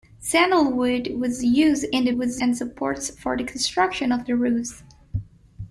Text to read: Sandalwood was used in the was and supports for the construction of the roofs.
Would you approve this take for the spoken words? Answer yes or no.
yes